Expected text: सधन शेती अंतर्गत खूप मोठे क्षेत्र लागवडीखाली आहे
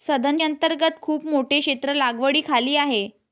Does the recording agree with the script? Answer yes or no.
no